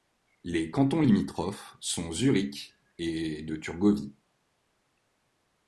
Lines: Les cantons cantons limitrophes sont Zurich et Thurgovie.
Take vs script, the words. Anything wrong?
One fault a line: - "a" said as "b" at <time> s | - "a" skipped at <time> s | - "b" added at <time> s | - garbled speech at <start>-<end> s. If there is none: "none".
- "cantons" skipped at 1.0 s
- "de" added at 3.4 s